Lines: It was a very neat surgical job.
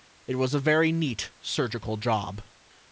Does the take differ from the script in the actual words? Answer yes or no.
no